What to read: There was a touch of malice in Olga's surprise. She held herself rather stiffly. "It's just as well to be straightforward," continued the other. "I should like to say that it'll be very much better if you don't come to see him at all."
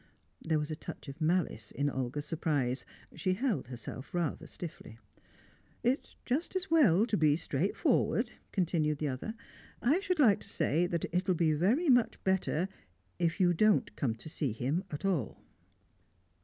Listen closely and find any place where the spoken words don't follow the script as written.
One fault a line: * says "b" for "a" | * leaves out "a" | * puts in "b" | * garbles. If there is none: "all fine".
all fine